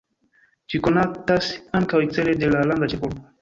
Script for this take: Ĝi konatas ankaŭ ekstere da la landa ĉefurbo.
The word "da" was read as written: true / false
false